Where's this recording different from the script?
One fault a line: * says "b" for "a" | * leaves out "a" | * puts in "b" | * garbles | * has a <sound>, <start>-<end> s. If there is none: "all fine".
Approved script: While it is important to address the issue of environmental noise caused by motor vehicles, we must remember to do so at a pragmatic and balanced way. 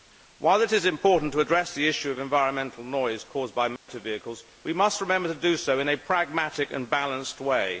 * has a dropout, 3.8-3.9 s
* says "in" for "at"